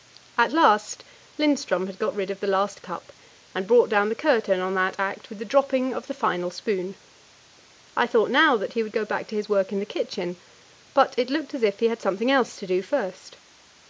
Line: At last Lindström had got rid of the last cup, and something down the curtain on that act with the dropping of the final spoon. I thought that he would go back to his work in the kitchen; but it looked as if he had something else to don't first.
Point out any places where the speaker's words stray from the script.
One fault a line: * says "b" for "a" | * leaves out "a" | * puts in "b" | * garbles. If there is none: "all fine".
* says "brought" for "something"
* puts in "now"
* says "do" for "don't"